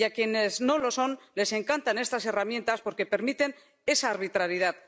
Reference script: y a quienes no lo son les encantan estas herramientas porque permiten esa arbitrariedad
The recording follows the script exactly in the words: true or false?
true